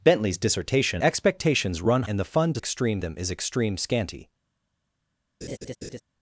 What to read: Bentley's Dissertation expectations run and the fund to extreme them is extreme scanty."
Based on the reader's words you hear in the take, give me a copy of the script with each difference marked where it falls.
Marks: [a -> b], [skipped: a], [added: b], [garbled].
Bentley's Dissertation expectations run and the fund to extreme them is extreme scanty."